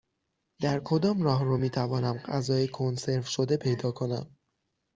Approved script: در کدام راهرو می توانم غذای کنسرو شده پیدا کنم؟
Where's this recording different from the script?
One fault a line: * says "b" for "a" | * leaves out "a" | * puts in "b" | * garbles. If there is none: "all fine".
all fine